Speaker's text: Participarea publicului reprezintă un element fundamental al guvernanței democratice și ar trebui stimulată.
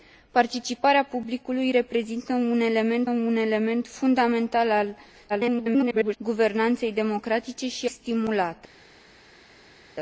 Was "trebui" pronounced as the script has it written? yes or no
no